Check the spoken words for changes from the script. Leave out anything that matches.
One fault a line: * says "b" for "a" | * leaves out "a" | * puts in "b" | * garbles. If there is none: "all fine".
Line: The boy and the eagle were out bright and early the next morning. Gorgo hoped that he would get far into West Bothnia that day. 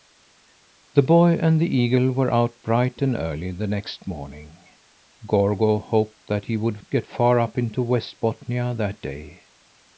* puts in "up"